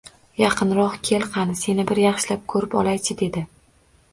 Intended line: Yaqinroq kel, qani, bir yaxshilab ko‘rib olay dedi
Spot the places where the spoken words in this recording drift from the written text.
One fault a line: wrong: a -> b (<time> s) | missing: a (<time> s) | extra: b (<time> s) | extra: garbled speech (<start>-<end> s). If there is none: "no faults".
extra: seni (1.6 s)
extra: chi (3.1 s)